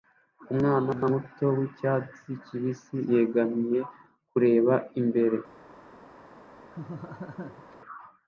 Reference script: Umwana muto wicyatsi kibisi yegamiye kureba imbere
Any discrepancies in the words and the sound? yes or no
yes